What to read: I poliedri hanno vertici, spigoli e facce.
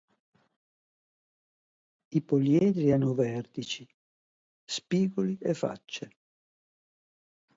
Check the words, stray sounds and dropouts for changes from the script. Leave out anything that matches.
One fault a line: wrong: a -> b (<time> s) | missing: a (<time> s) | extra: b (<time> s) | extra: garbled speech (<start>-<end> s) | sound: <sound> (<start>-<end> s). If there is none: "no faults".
no faults